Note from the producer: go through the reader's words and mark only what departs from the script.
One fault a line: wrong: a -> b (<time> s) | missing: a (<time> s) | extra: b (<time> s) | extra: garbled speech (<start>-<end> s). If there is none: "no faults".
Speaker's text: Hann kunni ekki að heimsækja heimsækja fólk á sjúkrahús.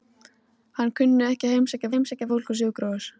no faults